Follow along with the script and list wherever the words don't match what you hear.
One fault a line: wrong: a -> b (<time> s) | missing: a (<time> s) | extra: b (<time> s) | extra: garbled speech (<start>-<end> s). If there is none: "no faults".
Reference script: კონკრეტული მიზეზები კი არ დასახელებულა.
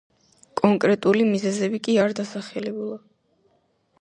no faults